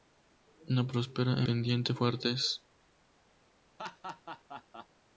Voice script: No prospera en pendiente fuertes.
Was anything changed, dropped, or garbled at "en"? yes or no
yes